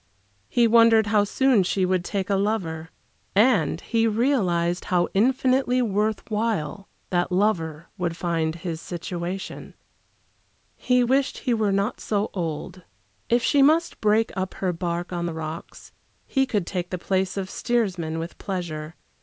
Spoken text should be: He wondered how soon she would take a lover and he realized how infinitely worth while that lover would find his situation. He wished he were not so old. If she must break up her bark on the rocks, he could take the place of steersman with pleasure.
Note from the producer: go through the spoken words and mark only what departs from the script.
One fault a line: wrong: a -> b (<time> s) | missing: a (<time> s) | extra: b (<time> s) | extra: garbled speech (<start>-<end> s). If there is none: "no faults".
no faults